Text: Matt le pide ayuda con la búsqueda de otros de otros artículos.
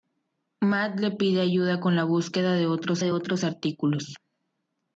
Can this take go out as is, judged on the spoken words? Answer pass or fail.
pass